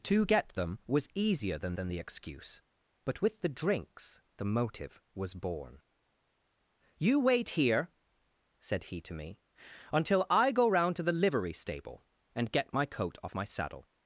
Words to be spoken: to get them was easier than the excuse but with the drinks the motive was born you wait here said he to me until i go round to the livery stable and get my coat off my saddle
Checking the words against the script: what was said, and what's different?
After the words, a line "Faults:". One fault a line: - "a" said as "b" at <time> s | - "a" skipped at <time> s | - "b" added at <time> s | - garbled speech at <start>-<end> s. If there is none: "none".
to get them was easier than than the excuse but with the drinks the motive was born you wait here said he to me until i go round to the livery stable and get my coat off my saddle
Faults:
- "than" added at 1.7 s